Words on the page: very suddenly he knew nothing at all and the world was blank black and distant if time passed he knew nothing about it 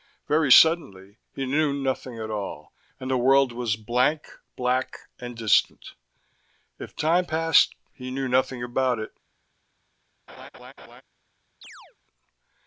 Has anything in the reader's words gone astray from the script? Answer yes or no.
no